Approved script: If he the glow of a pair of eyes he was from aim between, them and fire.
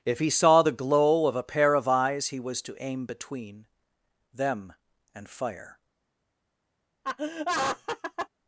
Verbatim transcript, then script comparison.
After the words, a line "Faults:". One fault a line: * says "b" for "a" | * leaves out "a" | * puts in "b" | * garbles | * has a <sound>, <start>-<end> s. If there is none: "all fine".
If he saw the glow of a pair of eyes he was to aim between, them and fire.
Faults:
* puts in "saw"
* says "to" for "from"
* has a laugh, 7.0-8.3 s